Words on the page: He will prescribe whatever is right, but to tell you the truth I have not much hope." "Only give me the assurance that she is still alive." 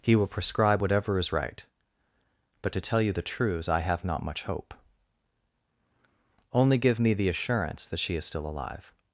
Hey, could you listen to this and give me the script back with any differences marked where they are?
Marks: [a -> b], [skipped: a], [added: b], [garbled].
He will prescribe whatever is right, but to tell you the [truth -> truths] I have not much hope." "Only give me the assurance that she is still alive."